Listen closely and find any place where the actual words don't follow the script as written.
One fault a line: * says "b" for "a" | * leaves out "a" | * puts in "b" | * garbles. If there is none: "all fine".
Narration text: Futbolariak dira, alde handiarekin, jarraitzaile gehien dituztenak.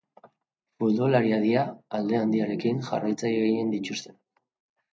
all fine